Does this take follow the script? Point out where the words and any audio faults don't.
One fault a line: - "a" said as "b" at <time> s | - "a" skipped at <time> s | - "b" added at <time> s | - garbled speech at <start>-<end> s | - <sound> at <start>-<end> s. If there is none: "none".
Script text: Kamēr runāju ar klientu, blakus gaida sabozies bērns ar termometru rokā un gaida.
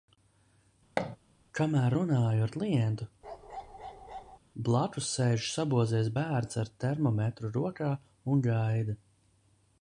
- thud at 1.0-1.2 s
- bark at 3.2-4.4 s
- "gaida" said as "sēž" at 5.2 s